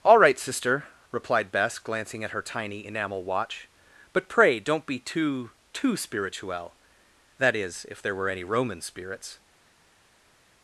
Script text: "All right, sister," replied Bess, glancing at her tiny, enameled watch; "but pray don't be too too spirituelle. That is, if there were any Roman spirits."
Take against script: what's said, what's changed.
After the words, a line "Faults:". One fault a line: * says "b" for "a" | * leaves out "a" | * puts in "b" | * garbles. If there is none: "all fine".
"All right, sister," replied Bess, glancing at her tiny, enamel watch; "but pray don't be too too spirituelle. That is, if there were any Roman spirits."
Faults:
* says "enamel" for "enameled"